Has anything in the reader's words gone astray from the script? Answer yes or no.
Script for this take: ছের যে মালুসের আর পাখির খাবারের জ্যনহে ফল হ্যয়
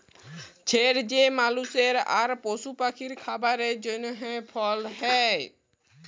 yes